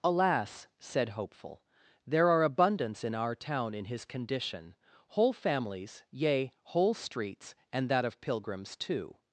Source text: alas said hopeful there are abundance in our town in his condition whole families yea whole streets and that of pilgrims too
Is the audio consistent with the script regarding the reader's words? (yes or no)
yes